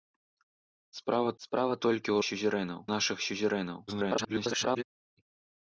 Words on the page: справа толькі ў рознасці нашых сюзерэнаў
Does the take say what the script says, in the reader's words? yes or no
no